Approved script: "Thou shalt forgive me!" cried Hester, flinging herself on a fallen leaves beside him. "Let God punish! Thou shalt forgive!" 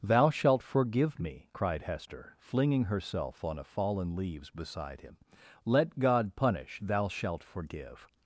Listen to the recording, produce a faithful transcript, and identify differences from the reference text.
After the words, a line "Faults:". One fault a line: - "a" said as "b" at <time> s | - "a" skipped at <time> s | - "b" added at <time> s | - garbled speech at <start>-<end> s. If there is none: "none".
"Thou shalt forgive me!" cried Hester, flinging herself on a fallen leaves beside him. "Let God punish! Thou shalt forgive!"
Faults:
none